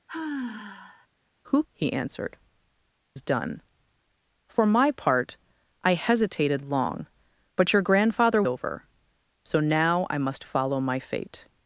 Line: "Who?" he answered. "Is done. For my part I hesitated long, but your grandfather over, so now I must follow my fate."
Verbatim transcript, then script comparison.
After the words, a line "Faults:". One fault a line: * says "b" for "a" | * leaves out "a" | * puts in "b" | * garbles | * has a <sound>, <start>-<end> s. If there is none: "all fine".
"Who?" he answered. "Is done. For my part I hesitated long, but your grandfather over, so now I must follow my fate."
Faults:
* has a sigh, 0.1-1.1 s